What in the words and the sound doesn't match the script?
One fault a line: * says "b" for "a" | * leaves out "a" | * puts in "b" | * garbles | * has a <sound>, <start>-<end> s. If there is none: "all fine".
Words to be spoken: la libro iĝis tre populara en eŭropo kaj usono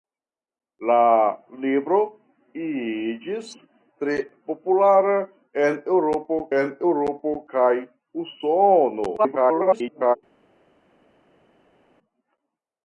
* puts in "en eŭropo"
* garbles